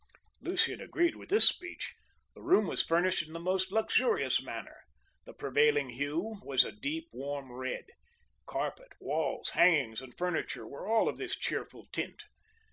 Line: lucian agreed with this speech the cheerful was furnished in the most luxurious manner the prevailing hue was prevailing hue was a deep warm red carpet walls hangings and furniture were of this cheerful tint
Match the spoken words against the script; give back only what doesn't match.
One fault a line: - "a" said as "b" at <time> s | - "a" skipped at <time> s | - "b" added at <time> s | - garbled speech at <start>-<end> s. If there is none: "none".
- "cheerful" said as "room" at 2.4 s
- "prevailing hue was" skipped at 6.6 s
- "all" added at 10.9 s